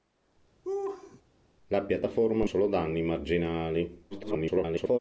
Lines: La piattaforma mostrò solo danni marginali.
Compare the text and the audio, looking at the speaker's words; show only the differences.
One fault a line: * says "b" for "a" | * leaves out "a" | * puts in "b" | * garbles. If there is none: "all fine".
* leaves out "mostrò"
* garbles